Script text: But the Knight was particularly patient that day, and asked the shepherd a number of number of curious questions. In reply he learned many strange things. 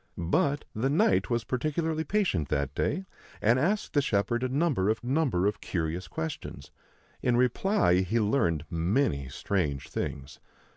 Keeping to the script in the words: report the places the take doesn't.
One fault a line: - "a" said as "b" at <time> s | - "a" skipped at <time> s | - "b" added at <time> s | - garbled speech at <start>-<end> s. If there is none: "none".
none